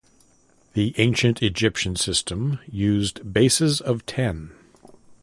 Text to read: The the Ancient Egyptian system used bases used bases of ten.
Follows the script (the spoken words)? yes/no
no